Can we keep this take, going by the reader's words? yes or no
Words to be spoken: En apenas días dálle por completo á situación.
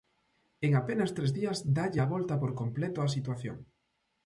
no